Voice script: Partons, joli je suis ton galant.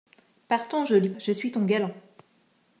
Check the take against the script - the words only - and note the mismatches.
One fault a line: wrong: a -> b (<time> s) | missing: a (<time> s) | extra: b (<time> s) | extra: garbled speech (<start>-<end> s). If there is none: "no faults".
no faults